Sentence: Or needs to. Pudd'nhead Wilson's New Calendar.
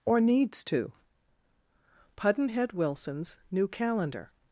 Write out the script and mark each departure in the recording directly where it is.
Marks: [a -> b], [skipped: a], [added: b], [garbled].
Or needs to. Pudd'nhead Wilson's New Calendar.